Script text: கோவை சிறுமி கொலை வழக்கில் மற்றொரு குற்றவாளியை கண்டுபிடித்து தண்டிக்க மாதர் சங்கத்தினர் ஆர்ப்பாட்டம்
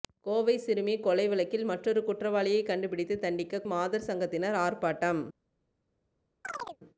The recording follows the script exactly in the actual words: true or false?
true